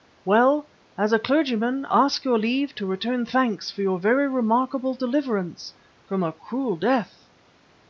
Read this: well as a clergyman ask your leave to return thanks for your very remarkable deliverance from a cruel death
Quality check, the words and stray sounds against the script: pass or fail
pass